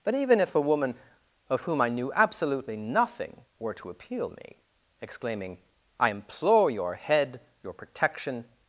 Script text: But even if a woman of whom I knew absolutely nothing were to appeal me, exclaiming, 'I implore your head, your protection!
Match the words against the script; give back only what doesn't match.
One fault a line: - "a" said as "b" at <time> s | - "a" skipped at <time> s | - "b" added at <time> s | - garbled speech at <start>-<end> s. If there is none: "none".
none